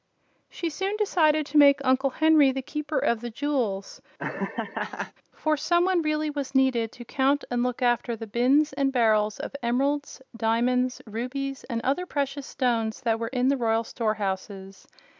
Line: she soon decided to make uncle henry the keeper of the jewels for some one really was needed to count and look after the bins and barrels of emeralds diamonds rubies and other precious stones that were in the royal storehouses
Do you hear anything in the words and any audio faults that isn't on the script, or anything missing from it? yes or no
yes